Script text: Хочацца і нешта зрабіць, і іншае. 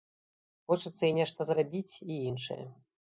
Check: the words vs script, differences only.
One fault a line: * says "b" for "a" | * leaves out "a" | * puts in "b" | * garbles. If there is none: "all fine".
all fine